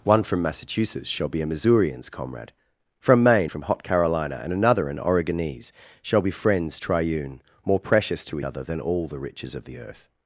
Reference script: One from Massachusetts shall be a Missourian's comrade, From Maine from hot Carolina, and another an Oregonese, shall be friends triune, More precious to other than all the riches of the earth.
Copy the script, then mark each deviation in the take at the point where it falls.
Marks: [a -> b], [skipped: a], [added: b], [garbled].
One from Massachusetts shall be a Missourian's comrade, From Maine from hot Carolina, and another an Oregonese, shall be friends triune, More precious to other than all the riches of the earth.